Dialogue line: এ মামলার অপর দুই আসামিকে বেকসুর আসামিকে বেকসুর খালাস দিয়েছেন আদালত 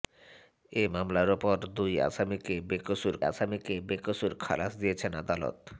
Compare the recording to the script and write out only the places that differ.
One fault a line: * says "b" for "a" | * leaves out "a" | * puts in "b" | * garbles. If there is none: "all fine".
all fine